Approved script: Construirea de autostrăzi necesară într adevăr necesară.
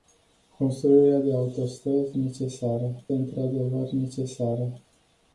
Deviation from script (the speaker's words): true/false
false